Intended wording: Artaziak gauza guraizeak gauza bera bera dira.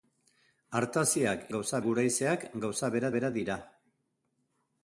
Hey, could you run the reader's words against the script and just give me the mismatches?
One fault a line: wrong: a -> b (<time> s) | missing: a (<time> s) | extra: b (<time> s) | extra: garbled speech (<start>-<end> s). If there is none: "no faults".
no faults